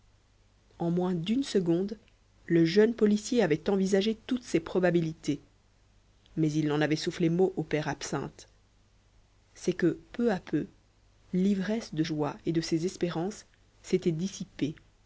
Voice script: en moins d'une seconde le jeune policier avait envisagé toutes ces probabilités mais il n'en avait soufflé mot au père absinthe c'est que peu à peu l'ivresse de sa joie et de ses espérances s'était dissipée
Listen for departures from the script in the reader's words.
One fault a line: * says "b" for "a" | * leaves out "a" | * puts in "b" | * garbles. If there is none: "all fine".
* leaves out "sa"